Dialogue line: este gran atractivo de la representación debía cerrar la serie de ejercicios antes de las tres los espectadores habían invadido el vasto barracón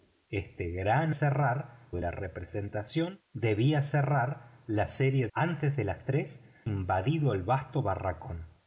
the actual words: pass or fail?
fail